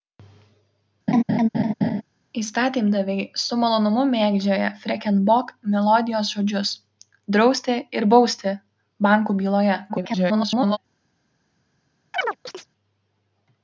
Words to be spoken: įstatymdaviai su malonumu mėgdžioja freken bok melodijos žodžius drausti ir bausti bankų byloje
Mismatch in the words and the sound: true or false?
true